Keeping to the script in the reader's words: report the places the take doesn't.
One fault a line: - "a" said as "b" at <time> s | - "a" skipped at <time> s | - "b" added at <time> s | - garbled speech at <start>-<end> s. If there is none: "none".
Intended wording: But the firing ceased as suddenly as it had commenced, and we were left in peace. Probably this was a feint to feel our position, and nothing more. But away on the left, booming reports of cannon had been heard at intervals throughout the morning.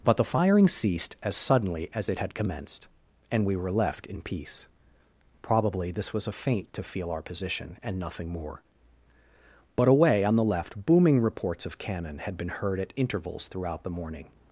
none